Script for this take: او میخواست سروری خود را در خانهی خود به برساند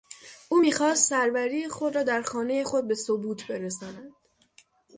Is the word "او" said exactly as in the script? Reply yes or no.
yes